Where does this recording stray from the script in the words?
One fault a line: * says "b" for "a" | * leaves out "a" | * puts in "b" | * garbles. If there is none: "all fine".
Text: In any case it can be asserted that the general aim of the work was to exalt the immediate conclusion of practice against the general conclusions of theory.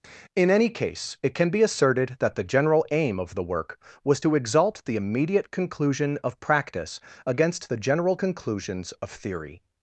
all fine